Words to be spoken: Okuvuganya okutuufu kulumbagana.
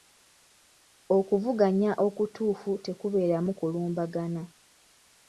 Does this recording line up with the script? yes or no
no